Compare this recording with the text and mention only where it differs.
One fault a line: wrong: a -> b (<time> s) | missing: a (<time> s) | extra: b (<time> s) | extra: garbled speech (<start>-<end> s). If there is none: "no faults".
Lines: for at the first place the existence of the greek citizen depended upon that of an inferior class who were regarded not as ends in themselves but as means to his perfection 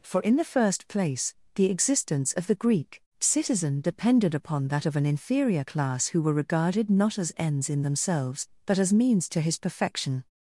wrong: at -> in (0.2 s)